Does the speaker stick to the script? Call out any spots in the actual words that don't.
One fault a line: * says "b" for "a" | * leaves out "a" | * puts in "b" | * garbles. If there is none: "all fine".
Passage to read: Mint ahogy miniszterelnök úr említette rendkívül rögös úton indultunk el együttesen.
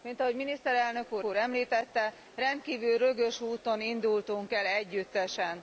* puts in "úr"